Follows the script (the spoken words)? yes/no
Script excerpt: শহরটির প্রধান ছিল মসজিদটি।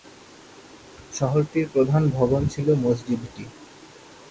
no